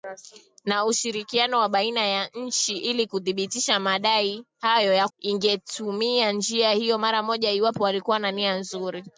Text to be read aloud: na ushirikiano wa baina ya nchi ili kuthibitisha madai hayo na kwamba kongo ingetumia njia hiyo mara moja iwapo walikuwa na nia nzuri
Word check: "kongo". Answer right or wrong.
wrong